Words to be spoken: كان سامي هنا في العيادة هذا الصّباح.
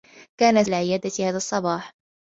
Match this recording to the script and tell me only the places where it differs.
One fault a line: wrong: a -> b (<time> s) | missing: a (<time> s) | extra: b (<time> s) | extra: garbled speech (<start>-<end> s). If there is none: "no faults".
missing: سامي هنا في (0.6 s)